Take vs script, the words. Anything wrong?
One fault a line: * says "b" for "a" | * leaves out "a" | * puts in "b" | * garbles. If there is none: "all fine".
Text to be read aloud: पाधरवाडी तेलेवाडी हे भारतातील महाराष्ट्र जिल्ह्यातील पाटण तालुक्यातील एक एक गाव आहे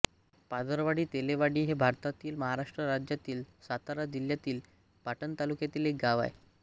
* puts in "राज्यातील सातारा"
* leaves out "एक"